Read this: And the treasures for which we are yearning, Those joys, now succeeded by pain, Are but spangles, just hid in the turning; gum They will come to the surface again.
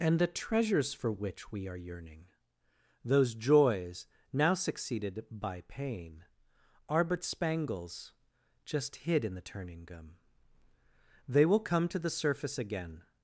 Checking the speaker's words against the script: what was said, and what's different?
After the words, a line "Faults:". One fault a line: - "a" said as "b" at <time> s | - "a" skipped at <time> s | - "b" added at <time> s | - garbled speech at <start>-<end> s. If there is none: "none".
And the treasures for which we are yearning, Those joys, now succeeded by pain, Are but spangles, just hid in the turning; gum They will come to the surface again.
Faults:
none